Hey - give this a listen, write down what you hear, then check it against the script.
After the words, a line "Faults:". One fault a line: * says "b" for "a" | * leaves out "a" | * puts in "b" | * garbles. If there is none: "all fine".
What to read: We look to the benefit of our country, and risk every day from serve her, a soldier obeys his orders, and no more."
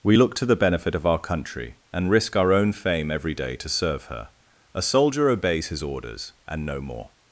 We look to the benefit of our country, and risk our own fame every day to serve her, a soldier obeys his orders, and no more."
Faults:
* puts in "our own fame"
* says "to" for "from"